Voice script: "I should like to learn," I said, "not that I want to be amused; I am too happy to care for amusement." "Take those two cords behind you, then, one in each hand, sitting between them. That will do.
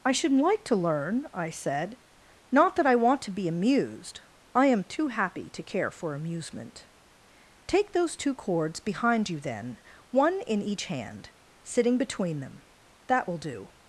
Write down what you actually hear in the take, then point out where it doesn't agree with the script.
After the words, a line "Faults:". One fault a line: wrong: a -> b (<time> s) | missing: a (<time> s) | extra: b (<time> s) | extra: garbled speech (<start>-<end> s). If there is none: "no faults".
"I should like to learn," I said, "not that I want to be amused; I am too happy to care for amusement." "Take those two cords behind you, then, one in each hand, sitting between them. That will do.
Faults:
no faults